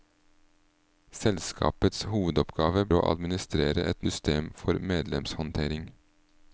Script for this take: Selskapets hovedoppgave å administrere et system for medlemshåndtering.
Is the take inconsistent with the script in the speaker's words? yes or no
no